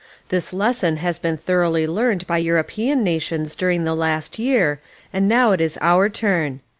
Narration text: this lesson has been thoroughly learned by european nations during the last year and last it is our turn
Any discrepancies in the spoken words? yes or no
yes